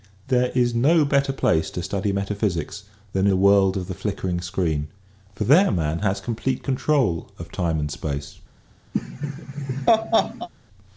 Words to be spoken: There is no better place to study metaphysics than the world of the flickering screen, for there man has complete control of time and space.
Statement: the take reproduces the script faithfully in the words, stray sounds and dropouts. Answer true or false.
false